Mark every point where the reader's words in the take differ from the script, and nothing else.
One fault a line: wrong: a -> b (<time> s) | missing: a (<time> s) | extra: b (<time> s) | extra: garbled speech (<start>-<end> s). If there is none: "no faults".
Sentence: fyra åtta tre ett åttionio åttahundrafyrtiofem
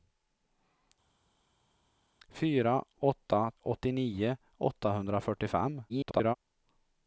missing: tre ett (3.5 s)
extra: garbled speech (5.9-6.3 s)